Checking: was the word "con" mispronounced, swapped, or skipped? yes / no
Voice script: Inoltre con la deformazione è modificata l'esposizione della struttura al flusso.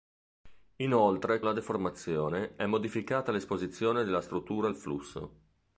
yes